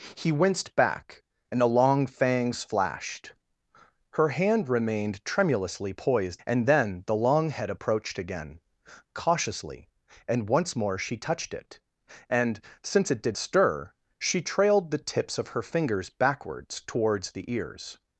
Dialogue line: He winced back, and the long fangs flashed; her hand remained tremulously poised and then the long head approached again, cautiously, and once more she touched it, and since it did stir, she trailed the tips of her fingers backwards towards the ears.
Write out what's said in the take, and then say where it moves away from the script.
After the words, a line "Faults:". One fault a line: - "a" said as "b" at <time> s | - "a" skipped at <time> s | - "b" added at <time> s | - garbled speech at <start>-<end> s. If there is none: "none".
He winced back, and the long fangs flashed; her hand remained tremulously poised and then the long head approached again, cautiously, and once more she touched it, and since it did stir, she trailed the tips of her fingers backwards towards the ears.
Faults:
none